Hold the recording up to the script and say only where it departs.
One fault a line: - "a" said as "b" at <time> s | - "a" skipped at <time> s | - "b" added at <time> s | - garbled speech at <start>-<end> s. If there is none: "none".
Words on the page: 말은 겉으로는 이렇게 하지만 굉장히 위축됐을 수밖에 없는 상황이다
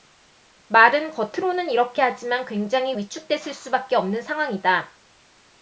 none